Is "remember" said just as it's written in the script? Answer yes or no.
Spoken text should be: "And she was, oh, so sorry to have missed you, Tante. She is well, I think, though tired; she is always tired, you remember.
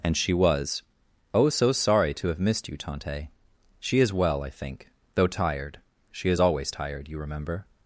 yes